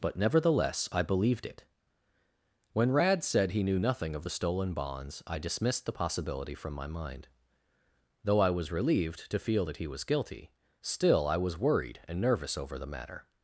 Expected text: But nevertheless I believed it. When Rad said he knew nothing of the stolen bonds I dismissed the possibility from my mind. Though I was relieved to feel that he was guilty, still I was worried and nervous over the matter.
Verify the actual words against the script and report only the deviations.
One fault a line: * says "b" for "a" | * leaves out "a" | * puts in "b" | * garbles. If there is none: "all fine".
all fine